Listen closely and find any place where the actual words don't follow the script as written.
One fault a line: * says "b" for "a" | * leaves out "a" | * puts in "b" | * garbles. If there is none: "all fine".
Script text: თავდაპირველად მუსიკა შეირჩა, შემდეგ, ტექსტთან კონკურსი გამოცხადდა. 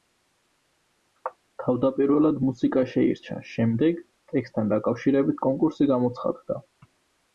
* puts in "დაკავშირებით"